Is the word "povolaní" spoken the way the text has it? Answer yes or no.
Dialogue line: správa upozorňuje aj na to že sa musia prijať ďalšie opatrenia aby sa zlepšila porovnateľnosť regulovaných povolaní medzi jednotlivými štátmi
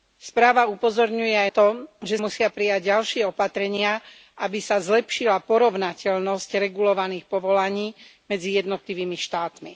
yes